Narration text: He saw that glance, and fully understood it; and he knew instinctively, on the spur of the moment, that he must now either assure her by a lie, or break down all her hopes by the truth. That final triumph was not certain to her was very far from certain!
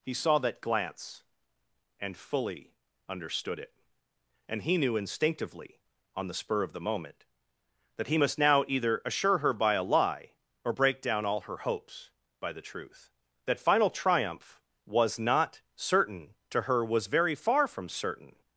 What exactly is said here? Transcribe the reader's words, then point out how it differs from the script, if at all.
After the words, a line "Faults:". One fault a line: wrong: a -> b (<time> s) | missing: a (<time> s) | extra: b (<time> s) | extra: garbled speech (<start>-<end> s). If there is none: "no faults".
He saw that glance, and fully understood it; and he knew instinctively, on the spur of the moment, that he must now either assure her by a lie, or break down all her hopes by the truth. That final triumph was not certain to her was very far from certain!
Faults:
no faults